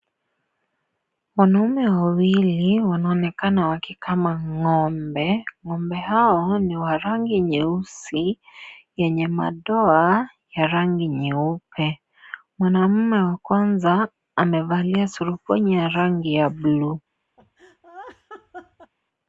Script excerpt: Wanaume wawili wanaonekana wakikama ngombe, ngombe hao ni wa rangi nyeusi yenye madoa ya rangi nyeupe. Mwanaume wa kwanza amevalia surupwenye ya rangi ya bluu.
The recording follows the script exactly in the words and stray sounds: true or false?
false